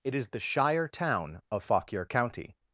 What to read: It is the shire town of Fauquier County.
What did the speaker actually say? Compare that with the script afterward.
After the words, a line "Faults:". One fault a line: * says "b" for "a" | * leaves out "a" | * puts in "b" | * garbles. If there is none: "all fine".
It is the shire town of Fauquier County.
Faults:
all fine